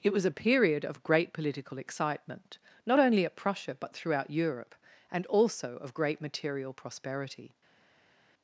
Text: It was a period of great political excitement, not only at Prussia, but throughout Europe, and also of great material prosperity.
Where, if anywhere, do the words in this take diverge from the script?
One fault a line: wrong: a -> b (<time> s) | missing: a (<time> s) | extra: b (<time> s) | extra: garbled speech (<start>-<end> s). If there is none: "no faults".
no faults